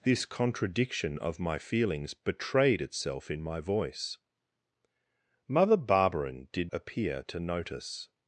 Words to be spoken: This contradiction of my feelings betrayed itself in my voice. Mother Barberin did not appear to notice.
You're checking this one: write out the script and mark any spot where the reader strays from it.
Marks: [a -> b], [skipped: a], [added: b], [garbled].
This contradiction of my feelings betrayed itself in my voice. Mother Barberin did [skipped: not] appear to notice.